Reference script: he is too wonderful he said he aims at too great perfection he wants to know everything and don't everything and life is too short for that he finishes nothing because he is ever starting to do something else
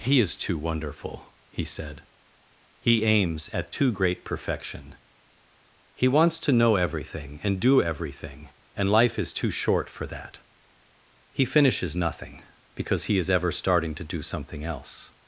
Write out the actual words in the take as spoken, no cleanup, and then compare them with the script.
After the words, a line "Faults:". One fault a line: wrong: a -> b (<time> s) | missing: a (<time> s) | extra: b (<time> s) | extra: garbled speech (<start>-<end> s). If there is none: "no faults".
he is too wonderful he said he aims at too great perfection he wants to know everything and do everything and life is too short for that he finishes nothing because he is ever starting to do something else
Faults:
wrong: don't -> do (7.6 s)